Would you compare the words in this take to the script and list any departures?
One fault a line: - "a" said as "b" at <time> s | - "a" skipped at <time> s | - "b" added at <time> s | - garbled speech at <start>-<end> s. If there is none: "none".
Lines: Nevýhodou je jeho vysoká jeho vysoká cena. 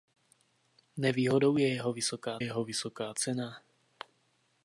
none